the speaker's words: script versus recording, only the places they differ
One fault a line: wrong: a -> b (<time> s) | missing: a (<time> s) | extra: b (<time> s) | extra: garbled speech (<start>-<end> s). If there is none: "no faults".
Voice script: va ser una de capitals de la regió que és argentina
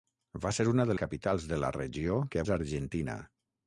no faults